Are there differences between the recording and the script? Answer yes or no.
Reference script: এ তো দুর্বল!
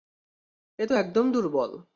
yes